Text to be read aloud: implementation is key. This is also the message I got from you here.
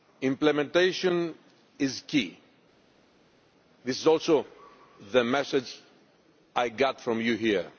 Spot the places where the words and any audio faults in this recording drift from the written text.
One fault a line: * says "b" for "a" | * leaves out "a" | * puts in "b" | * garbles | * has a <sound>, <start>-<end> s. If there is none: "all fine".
all fine